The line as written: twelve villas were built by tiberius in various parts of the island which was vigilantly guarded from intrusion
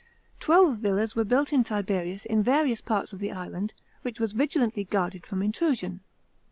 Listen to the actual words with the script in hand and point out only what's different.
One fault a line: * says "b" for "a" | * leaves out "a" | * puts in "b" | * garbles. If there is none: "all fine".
all fine